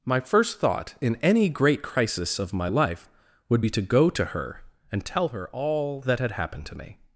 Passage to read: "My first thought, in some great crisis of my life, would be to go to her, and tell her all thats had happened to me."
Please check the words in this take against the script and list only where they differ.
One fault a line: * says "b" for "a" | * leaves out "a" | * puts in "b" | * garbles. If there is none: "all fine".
* says "any" for "some"
* says "that" for "thats"